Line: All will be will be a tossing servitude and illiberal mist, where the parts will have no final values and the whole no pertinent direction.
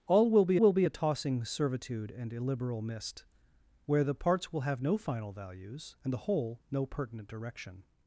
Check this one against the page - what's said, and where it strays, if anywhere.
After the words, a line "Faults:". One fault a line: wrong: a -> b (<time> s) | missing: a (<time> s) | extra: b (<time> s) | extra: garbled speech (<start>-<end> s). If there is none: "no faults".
All will be will be a tossing servitude and illiberal mist, where the parts will have no final values and the whole no pertinent direction.
Faults:
no faults